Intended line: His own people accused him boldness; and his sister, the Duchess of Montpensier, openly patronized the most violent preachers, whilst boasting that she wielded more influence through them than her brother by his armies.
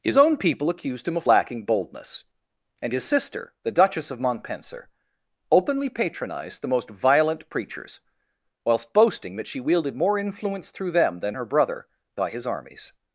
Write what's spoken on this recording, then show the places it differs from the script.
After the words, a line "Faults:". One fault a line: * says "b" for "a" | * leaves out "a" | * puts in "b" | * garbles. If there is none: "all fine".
His own people accused him of lacking boldness; and his sister, the Duchess of Montpensier, openly patronized the most violent preachers, whilst boasting that she wielded more influence through them than her brother by his armies.
Faults:
* puts in "of lacking"